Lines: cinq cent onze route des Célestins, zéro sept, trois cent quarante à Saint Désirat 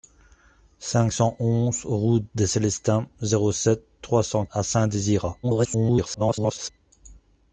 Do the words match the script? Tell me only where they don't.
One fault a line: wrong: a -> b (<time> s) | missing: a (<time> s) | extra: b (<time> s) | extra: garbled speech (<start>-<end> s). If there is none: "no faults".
missing: quarante (4.5 s)
extra: garbled speech (5.4-6.7 s)